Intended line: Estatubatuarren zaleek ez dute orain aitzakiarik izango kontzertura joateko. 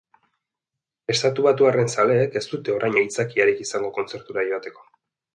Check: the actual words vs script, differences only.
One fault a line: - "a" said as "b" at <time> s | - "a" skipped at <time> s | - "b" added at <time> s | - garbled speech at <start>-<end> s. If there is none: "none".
none